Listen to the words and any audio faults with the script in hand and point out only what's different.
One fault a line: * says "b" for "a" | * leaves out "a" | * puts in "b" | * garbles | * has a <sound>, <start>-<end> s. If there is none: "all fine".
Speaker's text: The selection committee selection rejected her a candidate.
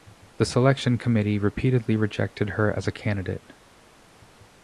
* says "repeatedly" for "selection"
* puts in "as"